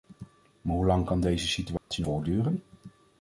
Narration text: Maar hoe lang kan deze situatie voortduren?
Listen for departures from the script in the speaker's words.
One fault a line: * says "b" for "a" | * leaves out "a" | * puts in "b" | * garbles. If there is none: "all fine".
all fine